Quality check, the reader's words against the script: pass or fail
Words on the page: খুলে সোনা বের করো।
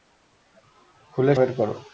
fail